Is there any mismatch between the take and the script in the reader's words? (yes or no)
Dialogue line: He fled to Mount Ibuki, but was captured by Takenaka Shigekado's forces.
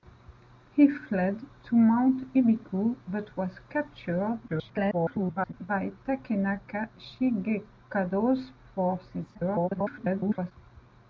yes